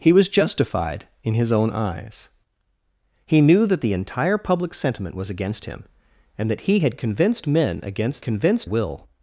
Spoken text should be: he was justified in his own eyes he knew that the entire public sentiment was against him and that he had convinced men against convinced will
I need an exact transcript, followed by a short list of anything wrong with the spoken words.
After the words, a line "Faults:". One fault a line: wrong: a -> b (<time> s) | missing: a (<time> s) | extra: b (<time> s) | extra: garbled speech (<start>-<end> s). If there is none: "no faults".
he was justified in his own eyes he knew that the entire public sentiment was against him and that he had convinced men against convinced will
Faults:
no faults